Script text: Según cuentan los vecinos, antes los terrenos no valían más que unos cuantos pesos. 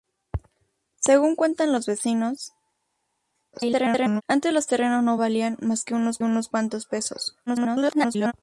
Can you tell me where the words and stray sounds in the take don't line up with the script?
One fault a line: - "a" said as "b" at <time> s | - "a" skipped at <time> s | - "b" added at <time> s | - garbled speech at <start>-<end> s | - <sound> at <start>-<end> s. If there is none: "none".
- garbled speech at 3.5-4.2 s
- "unos" added at 6.2 s
- garbled speech at 7.5-8.3 s